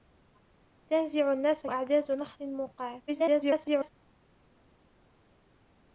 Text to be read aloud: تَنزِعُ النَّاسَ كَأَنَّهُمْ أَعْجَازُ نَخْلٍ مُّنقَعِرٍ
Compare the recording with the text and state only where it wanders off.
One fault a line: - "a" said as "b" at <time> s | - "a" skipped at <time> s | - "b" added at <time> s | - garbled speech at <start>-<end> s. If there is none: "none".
- "كَأَنَّهُمْ" skipped at 1.7 s
- garbled speech at 3.1-3.9 s